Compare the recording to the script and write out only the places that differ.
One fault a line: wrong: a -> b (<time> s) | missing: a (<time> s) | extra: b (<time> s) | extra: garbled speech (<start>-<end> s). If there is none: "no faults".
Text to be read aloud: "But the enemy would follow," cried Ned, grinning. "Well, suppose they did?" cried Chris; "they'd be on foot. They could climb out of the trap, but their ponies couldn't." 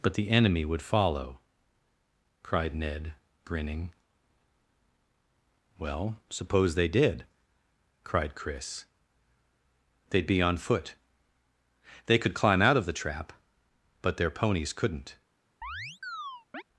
no faults